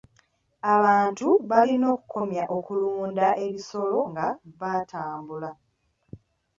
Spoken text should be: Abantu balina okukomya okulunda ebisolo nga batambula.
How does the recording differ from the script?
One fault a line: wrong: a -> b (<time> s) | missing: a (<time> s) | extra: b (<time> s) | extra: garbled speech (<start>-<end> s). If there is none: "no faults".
no faults